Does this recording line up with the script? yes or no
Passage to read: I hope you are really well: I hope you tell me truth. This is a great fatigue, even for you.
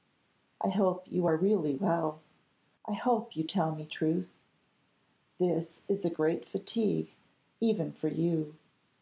yes